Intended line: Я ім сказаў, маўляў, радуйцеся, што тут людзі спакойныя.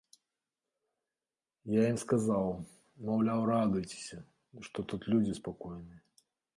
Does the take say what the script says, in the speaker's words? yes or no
yes